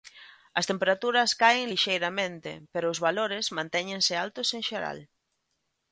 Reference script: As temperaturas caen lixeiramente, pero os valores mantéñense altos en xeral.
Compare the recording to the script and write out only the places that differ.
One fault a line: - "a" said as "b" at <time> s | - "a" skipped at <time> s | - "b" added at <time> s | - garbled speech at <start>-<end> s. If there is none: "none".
none